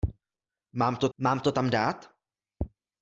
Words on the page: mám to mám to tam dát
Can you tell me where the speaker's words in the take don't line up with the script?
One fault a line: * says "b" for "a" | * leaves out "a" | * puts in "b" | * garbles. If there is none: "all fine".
all fine